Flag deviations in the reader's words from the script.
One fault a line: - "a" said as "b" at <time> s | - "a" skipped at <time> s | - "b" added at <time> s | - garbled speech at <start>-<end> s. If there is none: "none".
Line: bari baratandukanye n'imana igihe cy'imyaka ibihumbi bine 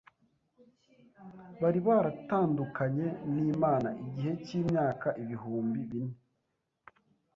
none